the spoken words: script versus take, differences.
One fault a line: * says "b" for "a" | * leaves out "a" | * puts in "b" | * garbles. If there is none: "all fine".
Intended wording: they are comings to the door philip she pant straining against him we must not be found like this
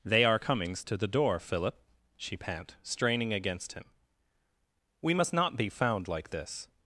all fine